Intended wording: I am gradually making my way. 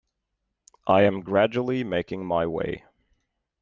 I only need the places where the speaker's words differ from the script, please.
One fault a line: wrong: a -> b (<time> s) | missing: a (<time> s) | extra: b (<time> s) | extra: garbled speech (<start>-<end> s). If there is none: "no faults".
no faults